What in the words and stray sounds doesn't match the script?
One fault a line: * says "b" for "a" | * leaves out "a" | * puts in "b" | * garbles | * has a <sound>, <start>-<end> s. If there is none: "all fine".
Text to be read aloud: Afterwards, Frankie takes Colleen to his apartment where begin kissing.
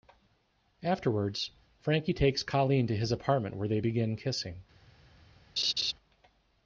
* puts in "they"
* has a laugh, 5.6-5.9 s